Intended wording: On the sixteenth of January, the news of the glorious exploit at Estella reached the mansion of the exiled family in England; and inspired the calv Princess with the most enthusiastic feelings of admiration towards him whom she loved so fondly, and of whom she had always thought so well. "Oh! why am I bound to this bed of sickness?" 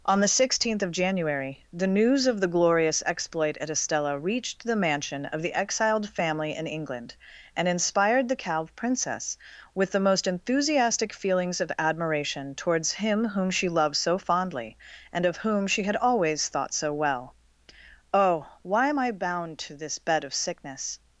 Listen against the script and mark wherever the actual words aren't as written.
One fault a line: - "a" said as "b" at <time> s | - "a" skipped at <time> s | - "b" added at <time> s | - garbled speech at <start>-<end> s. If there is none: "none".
none